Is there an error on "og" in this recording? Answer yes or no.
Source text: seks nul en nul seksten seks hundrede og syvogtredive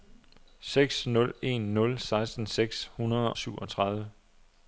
yes